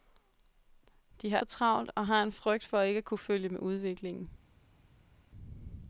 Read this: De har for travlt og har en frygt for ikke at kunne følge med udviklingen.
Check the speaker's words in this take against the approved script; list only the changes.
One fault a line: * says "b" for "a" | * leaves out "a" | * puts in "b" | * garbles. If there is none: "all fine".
all fine